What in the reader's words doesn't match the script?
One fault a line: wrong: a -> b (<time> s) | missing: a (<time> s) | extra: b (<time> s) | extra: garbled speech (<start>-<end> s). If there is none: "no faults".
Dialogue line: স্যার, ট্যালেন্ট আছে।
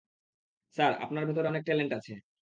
extra: আপনার ভেতরে অনেক (1.0 s)